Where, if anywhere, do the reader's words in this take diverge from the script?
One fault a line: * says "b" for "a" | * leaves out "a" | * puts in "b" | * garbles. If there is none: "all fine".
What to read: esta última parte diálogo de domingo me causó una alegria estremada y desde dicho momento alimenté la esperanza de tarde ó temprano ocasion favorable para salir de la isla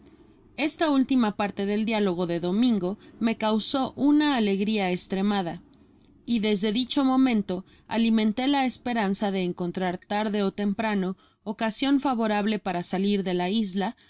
* puts in "del"
* puts in "encontrar"